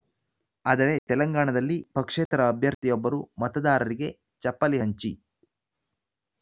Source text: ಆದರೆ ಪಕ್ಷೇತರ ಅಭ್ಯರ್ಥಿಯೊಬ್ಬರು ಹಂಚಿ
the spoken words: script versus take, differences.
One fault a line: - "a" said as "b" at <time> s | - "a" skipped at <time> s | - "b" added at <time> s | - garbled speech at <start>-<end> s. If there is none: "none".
- "ತೆಲಂಗಾಣದಲ್ಲಿ" added at 1.1 s
- "ಮತದಾರರಿಗೆ ಚಪ್ಪಲಿ" added at 3.4 s